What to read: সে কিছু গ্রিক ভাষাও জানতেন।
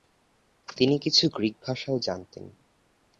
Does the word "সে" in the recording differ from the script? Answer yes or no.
yes